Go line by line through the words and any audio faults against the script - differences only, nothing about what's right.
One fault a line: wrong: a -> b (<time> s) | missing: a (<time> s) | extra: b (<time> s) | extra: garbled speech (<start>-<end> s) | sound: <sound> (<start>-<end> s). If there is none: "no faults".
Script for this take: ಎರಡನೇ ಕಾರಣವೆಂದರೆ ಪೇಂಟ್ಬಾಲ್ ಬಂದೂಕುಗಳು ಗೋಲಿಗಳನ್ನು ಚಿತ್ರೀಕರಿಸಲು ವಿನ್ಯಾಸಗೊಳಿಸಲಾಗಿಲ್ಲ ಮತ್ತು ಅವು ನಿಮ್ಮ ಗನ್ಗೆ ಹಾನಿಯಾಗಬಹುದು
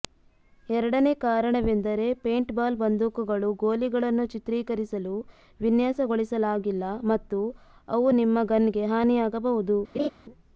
sound: laugh (9.9-10.1 s)